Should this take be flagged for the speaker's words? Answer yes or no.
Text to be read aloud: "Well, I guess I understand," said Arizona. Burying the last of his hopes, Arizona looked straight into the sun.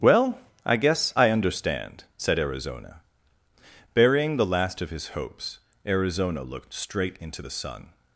no